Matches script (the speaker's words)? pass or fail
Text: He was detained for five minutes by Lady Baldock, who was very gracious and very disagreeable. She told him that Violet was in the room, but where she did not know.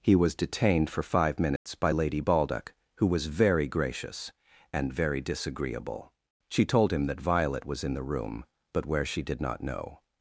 pass